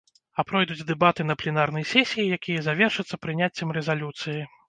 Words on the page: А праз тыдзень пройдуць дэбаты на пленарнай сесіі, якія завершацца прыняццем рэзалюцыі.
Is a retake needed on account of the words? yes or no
yes